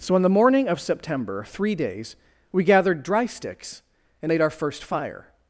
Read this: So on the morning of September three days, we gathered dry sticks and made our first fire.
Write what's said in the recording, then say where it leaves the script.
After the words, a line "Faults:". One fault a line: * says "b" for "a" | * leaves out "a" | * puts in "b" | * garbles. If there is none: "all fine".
So on the morning of September three days, we gathered dry sticks and made our first fire.
Faults:
all fine